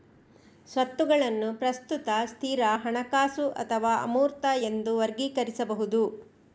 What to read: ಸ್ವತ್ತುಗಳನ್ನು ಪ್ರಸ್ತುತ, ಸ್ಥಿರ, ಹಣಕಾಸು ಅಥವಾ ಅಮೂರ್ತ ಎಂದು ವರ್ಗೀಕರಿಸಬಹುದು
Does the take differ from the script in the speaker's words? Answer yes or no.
no